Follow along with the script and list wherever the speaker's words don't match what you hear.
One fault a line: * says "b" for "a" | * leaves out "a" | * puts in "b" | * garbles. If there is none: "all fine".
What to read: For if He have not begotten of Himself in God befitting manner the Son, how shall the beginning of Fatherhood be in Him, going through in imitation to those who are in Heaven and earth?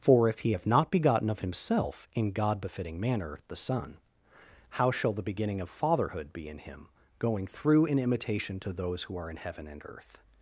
all fine